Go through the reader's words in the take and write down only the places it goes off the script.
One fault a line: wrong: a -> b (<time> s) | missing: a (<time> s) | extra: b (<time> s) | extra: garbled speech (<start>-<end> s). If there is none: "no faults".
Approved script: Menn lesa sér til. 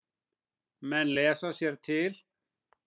no faults